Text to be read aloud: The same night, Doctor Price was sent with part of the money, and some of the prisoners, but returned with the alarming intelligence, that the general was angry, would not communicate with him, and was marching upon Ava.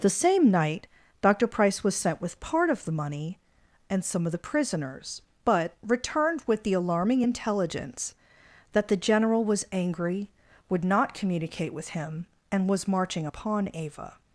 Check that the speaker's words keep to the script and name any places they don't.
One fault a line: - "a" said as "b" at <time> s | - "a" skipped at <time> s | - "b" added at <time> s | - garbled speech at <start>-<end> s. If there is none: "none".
none